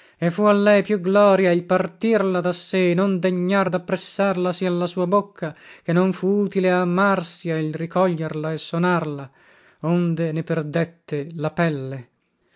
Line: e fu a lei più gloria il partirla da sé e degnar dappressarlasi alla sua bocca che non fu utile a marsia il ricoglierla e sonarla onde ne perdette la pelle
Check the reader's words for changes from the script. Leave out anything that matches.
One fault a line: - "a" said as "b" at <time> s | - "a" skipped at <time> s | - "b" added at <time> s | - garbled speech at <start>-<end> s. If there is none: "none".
- "non" added at 3.0 s